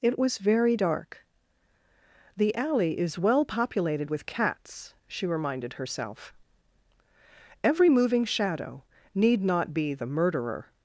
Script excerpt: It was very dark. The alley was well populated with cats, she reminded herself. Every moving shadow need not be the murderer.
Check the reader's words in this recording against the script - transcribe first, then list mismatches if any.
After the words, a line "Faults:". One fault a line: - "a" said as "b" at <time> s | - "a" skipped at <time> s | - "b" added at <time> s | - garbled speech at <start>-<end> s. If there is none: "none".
It was very dark. The alley is well populated with cats, she reminded herself. Every moving shadow need not be the murderer.
Faults:
- "was" said as "is" at 3.0 s